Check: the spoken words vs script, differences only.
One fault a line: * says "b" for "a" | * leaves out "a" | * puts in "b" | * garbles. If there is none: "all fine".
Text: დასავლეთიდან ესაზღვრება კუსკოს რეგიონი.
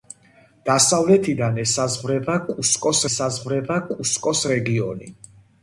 * puts in "ესაზღვრება კუსკოს"